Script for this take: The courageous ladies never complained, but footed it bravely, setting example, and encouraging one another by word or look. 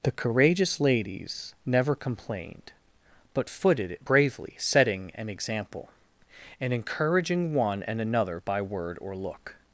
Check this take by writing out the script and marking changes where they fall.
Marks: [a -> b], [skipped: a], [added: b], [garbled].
The courageous ladies never complained, but footed it bravely, setting [added: an] example, and encouraging one [added: and] another by word or look.